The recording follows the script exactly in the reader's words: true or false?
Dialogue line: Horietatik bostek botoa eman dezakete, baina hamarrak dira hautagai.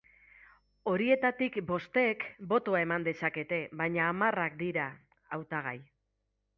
true